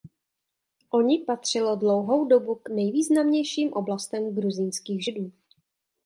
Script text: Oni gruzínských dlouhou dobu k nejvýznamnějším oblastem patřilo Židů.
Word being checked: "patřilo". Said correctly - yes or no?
no